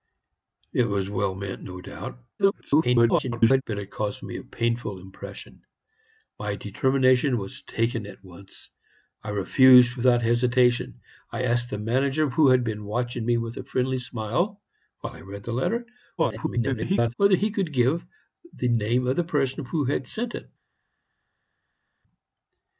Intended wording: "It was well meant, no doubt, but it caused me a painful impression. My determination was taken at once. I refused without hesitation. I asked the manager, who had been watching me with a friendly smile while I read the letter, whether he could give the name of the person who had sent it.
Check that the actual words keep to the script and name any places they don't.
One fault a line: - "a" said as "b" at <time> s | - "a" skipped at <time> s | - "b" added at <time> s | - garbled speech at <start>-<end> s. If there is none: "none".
- garbled speech at 2.4-3.6 s
- garbled speech at 16.2-17.1 s